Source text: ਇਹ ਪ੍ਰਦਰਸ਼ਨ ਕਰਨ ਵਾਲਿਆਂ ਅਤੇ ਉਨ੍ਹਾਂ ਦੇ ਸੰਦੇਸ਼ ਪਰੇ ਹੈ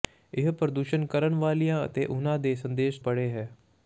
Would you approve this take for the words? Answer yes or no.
yes